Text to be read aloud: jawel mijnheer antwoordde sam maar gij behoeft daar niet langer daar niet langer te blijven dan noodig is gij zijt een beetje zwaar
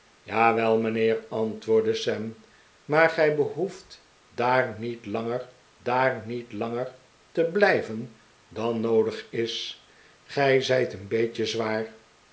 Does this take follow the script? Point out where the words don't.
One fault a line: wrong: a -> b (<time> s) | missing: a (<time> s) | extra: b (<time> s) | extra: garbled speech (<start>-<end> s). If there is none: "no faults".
no faults